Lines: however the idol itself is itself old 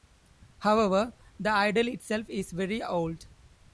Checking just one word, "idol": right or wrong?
right